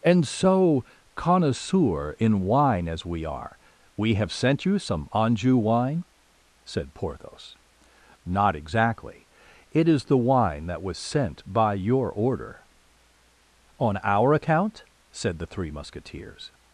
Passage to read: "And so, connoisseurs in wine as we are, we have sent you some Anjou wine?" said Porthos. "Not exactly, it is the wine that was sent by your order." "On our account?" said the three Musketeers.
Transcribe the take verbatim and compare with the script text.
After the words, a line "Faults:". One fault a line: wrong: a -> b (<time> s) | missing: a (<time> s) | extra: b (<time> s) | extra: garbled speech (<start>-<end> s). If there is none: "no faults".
"And so, connoisseur in wine as we are, we have sent you some Anjou wine?" said Porthos. "Not exactly, it is the wine that was sent by your order." "On our account?" said the three Musketeers.
Faults:
wrong: connoisseurs -> connoisseur (1.1 s)